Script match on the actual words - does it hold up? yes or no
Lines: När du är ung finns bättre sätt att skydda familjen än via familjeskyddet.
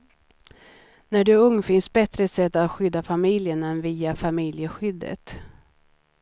yes